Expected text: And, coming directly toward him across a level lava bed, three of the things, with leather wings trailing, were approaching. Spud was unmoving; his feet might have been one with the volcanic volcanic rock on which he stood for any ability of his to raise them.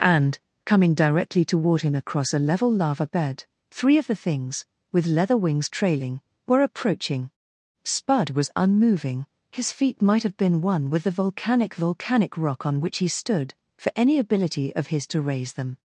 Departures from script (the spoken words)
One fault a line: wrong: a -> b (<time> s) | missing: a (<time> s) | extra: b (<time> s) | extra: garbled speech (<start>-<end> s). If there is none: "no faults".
no faults